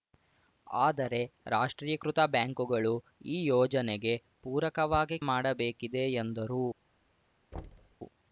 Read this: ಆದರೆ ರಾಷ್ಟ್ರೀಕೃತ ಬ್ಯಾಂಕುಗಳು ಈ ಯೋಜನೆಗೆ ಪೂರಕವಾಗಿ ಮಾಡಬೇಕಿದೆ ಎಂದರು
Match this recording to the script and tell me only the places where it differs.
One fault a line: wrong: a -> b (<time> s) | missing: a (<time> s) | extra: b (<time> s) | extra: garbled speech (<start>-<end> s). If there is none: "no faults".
no faults